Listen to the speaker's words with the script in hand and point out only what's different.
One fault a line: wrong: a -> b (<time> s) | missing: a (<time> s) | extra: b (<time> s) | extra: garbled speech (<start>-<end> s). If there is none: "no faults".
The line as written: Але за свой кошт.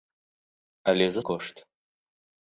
missing: свой (1.2 s)